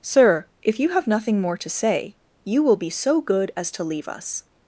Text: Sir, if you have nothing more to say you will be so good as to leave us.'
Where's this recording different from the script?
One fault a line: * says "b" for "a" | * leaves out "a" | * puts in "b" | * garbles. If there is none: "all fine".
all fine